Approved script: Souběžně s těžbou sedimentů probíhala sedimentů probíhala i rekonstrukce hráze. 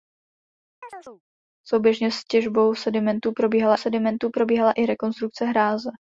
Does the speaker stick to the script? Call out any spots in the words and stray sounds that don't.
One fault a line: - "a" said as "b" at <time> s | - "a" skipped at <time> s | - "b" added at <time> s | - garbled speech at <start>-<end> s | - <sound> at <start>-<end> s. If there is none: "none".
- chirp at 0.8-1.2 s